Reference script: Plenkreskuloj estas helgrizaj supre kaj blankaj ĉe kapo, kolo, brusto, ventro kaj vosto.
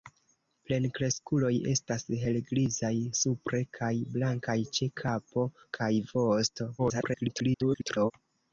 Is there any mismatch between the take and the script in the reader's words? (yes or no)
yes